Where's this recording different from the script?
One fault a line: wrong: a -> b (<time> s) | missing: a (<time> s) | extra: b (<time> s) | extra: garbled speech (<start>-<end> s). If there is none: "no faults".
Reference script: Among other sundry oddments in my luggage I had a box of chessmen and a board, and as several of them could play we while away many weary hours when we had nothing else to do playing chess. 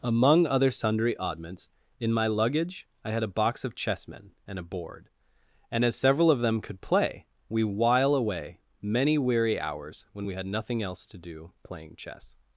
no faults